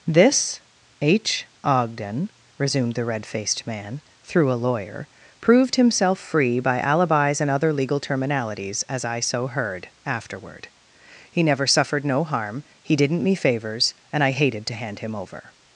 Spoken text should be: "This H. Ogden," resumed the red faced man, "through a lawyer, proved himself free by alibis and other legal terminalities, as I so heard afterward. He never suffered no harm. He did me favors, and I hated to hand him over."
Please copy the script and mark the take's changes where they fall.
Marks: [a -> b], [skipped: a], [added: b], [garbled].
"This H. Ogden," resumed the red faced man, "through a lawyer, proved himself free by alibis and other legal terminalities, as I so heard afterward. He never suffered no harm. He [did -> didn't] me favors, and I hated to hand him over."